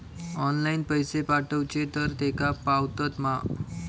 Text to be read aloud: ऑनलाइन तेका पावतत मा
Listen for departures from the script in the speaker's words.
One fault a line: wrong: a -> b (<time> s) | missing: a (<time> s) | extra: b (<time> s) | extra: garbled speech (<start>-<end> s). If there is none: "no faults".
extra: पैसे पाठवचे तर (0.8 s)